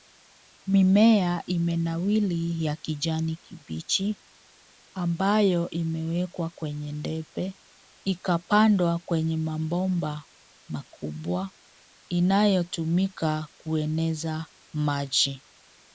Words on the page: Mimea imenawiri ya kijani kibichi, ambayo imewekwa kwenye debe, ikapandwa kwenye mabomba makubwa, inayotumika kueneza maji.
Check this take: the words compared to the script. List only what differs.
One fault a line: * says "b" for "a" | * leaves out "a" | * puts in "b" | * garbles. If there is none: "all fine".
all fine